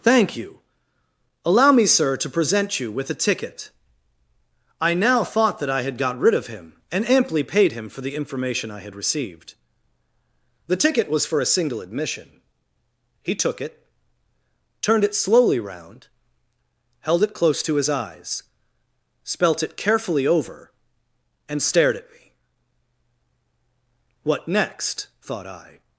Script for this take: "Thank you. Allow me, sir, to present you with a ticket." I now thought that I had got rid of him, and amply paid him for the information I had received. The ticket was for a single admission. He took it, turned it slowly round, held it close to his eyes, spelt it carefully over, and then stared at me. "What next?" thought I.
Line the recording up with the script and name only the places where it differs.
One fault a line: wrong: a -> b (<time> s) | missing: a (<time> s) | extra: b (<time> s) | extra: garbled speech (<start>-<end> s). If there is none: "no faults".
missing: then (21.6 s)